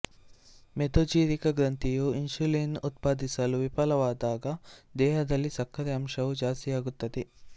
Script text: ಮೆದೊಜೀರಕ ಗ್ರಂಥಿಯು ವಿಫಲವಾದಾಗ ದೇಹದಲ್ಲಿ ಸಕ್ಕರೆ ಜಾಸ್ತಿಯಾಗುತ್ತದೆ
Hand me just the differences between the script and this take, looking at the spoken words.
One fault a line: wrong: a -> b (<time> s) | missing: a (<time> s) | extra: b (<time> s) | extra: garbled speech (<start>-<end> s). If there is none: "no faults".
extra: ಇನ್ಸುಲಿನ್ ಉತ್ಪಾದಿಸಲು (2.1 s)
extra: ಅಂಶವು (5.9 s)